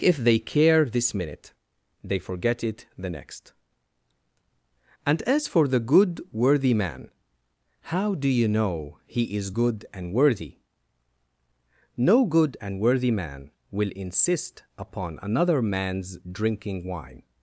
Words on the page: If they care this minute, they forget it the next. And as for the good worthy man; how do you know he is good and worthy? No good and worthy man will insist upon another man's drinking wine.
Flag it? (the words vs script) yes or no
no